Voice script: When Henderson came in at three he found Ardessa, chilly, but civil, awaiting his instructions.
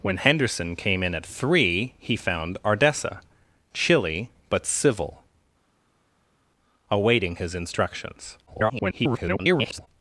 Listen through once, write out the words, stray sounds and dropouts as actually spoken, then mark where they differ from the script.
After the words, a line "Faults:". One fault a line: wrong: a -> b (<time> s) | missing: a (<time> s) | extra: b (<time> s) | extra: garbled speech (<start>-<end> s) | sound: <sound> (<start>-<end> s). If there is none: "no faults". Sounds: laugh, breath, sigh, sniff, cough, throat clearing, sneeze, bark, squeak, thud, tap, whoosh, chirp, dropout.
When Henderson came in at three he found Ardessa, chilly, but civil, awaiting his instructions. [garbled]
Faults:
extra: garbled speech (8.5-9.9 s)